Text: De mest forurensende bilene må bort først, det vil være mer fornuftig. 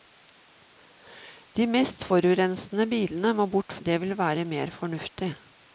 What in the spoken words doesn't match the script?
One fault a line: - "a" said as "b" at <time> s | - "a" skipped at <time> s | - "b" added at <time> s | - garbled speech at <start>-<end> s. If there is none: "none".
- "først" skipped at 3.7 s